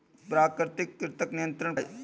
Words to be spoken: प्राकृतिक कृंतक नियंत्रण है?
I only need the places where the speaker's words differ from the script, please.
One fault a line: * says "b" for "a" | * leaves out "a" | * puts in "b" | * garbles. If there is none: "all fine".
all fine